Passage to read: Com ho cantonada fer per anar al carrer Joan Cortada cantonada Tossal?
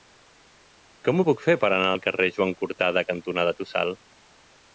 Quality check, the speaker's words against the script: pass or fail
fail